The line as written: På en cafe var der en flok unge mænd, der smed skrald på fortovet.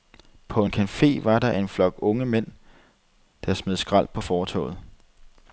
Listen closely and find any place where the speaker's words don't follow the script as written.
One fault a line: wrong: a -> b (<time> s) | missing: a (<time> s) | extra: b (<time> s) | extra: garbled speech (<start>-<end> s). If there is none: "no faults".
no faults